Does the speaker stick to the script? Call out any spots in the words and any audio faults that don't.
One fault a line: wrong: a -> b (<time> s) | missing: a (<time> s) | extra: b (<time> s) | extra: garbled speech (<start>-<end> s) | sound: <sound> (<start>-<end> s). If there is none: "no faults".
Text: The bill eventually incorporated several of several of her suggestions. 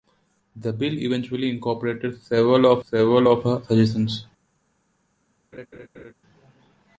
sound: laugh (5.5-6.1 s)